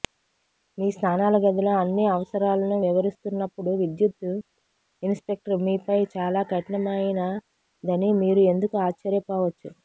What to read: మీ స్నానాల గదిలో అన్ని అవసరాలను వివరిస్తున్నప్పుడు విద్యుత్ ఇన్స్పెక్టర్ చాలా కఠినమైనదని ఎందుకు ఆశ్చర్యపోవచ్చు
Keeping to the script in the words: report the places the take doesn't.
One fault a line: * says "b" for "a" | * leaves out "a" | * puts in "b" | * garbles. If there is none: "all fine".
* puts in "మీపై"
* puts in "మీరు"